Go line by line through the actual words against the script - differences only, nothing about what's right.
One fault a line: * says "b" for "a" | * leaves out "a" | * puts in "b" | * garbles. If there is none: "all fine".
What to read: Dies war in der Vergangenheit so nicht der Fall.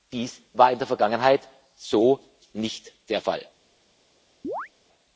all fine